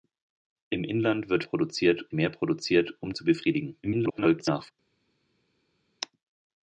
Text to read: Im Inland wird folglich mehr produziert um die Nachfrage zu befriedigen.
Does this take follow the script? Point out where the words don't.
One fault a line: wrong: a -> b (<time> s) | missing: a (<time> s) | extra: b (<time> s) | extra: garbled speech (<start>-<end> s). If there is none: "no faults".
wrong: folglich -> produziert (1.4 s)
missing: die Nachfrage (3.1 s)
extra: garbled speech (3.8-4.7 s)